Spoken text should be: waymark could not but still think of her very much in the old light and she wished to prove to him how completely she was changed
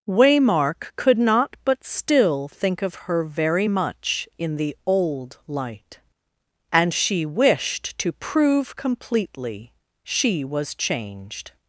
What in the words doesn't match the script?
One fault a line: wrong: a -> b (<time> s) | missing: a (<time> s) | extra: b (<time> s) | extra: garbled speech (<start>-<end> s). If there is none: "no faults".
missing: to him how (8.8 s)